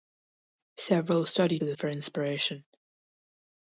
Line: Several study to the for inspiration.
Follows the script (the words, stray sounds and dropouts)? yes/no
yes